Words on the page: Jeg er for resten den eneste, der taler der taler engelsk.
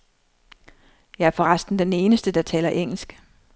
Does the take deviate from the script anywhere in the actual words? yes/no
yes